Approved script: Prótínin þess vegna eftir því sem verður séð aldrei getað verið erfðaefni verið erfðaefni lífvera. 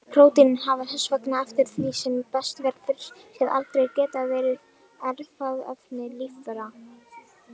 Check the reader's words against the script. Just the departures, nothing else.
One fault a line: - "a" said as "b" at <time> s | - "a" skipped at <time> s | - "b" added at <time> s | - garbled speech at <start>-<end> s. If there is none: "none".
- "hafa" added at 0.6 s
- "best" added at 2.4 s
- "verið erfðaefni" skipped at 6.1 s